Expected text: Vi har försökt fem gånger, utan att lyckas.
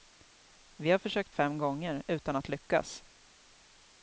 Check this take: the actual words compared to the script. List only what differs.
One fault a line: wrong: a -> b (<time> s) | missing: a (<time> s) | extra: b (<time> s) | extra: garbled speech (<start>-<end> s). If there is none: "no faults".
no faults